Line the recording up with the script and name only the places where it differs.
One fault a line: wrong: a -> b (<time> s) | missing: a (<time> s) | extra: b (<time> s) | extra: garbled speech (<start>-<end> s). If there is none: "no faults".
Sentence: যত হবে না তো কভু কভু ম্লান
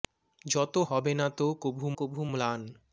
no faults